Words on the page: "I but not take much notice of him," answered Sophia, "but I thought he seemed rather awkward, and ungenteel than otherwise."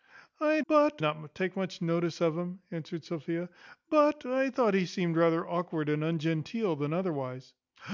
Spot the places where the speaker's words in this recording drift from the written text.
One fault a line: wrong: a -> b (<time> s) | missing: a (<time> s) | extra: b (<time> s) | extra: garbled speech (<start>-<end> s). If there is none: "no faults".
no faults